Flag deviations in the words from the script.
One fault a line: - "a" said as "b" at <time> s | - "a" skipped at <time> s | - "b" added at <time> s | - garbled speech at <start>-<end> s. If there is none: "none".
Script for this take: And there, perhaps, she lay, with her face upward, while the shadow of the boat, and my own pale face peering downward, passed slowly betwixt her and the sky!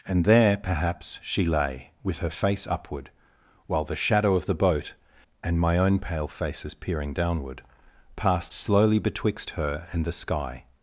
- "face" said as "faces" at 6.3 s